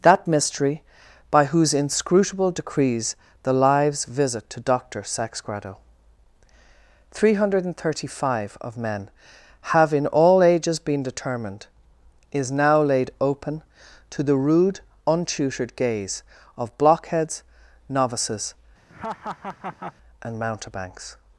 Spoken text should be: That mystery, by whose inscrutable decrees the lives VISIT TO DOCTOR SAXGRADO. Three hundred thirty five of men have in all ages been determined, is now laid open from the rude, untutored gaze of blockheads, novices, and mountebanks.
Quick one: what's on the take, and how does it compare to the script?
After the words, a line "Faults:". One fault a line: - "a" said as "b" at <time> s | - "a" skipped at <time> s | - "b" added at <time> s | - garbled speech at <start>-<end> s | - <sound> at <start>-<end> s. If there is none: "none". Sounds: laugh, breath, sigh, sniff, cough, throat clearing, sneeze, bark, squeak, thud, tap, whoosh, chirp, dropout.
That mystery, by whose inscrutable decrees the lives VISIT TO DOCTOR SAXGRADO. Three hundred thirty five of men have in all ages been determined, is now laid open to the rude, untutored gaze of blockheads, novices, and mountebanks.
Faults:
- "from" said as "to" at 14.1 s
- laugh at 18.9-19.9 s